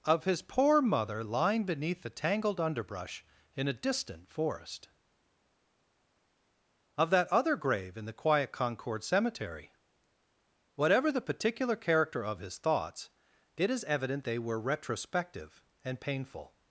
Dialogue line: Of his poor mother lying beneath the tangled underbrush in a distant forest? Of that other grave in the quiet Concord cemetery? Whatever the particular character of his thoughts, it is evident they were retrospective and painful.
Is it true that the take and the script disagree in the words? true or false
false